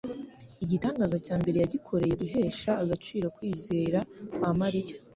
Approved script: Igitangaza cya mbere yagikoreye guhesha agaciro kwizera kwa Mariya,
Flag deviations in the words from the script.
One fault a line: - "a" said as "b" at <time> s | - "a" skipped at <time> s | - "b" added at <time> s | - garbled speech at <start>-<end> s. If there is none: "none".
none